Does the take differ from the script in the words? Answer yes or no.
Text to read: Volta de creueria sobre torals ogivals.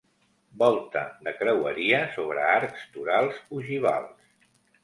yes